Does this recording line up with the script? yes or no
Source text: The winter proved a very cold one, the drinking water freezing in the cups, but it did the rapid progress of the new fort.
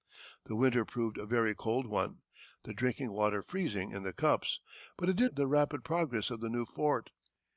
yes